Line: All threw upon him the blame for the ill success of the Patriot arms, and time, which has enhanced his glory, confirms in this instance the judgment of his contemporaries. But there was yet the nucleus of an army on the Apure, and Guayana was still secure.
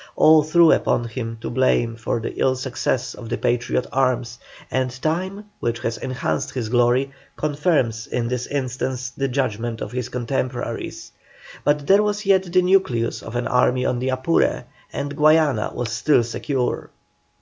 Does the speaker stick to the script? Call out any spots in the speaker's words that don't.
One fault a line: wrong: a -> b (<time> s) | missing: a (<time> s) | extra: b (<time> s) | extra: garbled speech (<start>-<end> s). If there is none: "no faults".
no faults